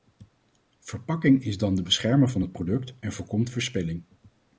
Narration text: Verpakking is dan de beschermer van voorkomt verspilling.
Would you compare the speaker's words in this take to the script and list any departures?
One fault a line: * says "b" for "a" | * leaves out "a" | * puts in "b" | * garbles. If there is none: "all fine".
* puts in "het product en"